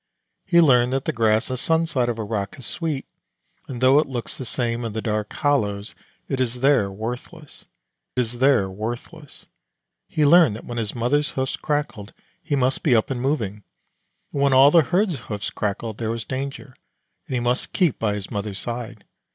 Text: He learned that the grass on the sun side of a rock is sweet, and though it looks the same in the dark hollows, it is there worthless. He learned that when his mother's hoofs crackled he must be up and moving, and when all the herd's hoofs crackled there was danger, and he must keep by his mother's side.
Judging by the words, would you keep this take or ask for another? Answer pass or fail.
fail